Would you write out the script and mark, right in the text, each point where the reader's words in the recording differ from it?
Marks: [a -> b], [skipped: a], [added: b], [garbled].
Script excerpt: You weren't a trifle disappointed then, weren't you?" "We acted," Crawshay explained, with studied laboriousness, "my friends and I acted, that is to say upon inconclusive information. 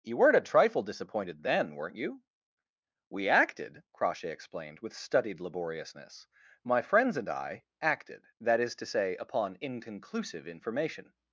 You weren't a trifle disappointed then, weren't you?" "We acted," Crawshay explained, with studied laboriousness, "my friends and I acted, that is to say upon inconclusive information.